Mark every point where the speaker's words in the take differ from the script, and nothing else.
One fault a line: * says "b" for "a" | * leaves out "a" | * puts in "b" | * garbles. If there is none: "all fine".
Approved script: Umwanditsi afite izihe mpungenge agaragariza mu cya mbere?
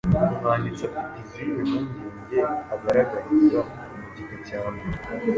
* puts in "gika"